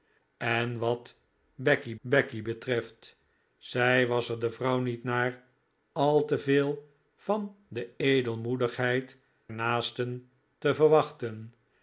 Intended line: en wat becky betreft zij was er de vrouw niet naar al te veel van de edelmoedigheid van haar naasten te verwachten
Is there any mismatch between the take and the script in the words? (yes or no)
yes